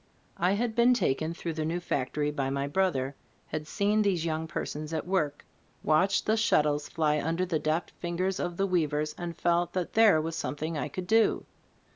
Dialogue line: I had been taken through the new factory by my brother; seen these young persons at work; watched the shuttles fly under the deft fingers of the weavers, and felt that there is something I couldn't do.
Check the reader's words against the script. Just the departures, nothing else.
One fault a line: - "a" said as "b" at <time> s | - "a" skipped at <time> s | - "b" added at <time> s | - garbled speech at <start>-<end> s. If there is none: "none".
- "had" added at 3.5 s
- "is" said as "was" at 10.2 s
- "couldn't" said as "could" at 10.9 s